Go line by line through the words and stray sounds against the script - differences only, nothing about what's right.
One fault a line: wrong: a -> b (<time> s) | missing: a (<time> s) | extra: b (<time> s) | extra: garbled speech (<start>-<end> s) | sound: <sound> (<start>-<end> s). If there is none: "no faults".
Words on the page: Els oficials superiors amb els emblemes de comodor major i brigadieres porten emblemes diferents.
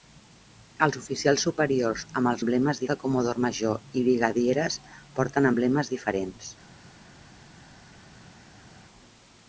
no faults